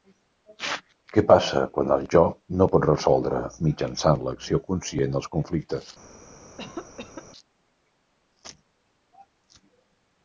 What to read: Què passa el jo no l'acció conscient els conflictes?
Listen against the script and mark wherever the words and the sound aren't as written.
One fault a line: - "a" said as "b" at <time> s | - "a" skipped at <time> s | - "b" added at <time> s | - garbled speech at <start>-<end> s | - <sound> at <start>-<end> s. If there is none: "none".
- "quan" added at 1.7 s
- "pot resoldre mitjançant" added at 2.7 s
- cough at 6.6-7.3 s